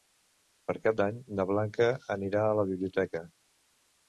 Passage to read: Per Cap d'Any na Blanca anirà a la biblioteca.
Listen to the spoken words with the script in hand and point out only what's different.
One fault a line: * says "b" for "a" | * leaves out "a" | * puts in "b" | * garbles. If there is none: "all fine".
all fine